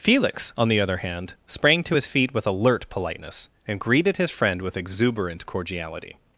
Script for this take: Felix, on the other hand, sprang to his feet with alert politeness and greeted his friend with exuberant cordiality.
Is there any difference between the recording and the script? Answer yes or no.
no